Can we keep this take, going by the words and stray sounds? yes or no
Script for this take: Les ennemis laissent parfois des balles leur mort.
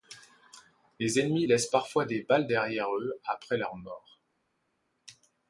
no